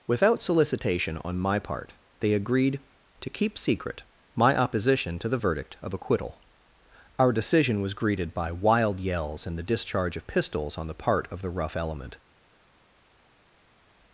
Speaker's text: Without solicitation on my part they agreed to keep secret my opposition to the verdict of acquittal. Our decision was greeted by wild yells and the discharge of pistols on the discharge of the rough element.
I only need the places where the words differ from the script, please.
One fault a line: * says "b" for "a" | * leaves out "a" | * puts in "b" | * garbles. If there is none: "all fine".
* says "part" for "discharge"